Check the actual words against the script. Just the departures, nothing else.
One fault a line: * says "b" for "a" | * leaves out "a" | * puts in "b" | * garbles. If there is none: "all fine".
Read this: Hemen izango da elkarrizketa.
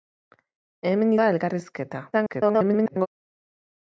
* leaves out "izango"
* garbles